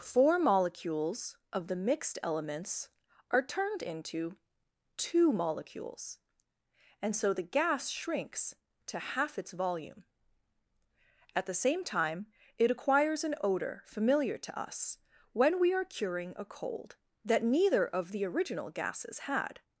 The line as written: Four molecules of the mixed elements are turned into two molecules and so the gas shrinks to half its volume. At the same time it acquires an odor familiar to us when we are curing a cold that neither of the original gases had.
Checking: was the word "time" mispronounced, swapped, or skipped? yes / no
no